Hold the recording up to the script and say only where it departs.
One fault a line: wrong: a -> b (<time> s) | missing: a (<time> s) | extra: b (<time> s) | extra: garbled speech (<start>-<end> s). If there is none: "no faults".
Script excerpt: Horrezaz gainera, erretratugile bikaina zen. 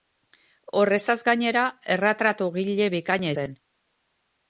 no faults